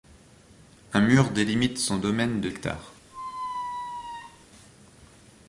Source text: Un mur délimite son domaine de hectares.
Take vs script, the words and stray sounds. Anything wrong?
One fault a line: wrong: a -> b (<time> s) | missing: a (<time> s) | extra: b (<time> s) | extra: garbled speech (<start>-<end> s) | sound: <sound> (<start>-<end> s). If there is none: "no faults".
sound: squeak (3.1-4.5 s)